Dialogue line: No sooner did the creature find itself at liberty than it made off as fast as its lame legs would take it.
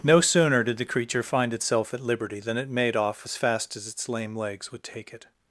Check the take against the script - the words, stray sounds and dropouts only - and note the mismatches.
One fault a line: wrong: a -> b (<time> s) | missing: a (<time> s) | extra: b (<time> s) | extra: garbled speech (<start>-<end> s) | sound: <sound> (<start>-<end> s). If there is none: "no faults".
no faults